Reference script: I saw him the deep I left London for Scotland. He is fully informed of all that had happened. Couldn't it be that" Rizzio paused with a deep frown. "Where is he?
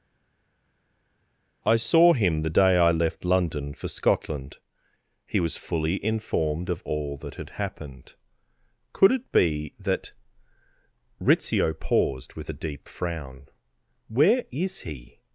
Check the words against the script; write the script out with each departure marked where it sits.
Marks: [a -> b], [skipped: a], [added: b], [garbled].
I saw him the [deep -> day] I left London for Scotland. He [is -> was] fully informed of all that had happened. [Couldn't -> Could] it be that" Rizzio paused with a deep frown. "Where is he?